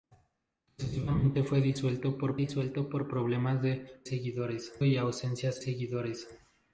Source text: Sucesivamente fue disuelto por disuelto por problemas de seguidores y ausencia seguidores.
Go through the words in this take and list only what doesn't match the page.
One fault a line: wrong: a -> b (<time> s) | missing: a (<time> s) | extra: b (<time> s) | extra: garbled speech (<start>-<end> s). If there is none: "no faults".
no faults